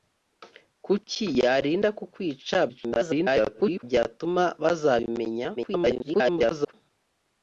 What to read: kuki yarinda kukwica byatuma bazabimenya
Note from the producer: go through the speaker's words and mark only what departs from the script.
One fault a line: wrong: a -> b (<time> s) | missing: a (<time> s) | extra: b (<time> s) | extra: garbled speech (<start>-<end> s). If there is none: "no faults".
extra: garbled speech (2.7-3.8 s)
extra: garbled speech (5.6-6.7 s)